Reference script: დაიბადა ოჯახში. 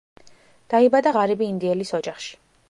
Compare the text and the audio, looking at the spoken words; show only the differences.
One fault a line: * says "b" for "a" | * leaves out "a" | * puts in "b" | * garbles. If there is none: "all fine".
* puts in "ღარიბი ინდიელის"